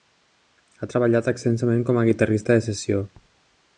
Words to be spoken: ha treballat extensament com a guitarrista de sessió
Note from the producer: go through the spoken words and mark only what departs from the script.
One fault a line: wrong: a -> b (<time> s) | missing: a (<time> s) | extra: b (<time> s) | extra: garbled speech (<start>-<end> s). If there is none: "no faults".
no faults